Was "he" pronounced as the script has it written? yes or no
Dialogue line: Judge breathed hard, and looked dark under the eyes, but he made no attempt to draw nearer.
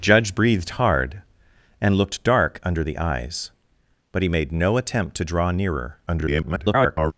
yes